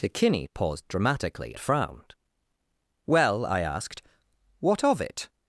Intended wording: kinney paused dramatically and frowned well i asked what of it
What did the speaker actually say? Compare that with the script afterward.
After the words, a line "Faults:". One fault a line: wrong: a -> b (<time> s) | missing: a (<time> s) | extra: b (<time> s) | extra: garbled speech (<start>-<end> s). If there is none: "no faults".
kinney paused dramatically frowned well i asked what of it
Faults:
missing: and (1.5 s)